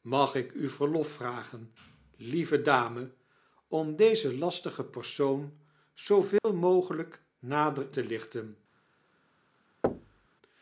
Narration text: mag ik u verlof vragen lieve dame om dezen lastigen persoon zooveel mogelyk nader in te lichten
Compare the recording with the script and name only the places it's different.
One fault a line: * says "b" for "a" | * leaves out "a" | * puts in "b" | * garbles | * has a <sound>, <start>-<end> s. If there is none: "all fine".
* has a dropout, 6.4-6.4 s
* leaves out "in"
* has a thud, 9.8-10.3 s